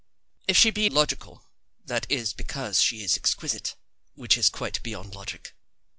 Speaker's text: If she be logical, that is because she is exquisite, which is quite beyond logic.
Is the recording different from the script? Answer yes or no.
no